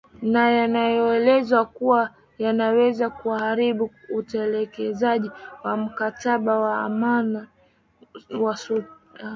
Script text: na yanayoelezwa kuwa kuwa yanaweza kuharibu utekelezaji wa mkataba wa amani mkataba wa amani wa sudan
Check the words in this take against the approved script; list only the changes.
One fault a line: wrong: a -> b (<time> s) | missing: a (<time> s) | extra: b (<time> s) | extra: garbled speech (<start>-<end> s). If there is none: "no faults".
missing: kuwa (2.1 s)
missing: mkataba wa amani (7.4 s)